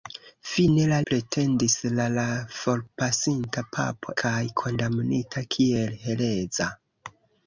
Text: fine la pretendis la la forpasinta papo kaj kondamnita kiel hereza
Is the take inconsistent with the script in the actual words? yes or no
no